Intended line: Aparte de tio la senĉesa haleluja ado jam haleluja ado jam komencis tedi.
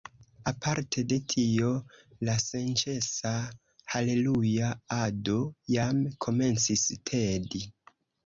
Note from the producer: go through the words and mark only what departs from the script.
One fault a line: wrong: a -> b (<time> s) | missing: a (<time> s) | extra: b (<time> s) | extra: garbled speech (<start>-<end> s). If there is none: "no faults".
missing: haleluja ado jam (6.0 s)